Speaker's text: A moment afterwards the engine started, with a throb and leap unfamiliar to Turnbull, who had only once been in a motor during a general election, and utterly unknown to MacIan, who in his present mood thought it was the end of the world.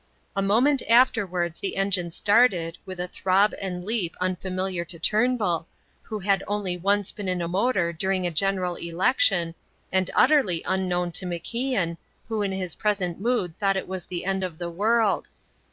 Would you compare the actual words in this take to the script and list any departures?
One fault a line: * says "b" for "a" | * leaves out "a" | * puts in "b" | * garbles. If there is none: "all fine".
all fine